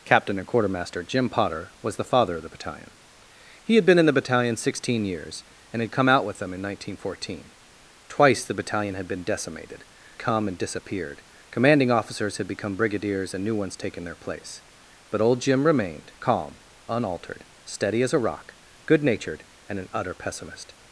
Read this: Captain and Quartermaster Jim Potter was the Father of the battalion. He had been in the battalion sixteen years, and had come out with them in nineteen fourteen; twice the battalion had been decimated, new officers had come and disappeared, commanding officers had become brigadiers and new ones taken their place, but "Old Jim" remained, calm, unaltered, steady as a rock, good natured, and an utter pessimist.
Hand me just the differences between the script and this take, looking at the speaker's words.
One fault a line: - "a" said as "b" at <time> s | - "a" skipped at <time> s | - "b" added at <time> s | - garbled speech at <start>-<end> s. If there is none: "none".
- "new officers had" skipped at 9.8 s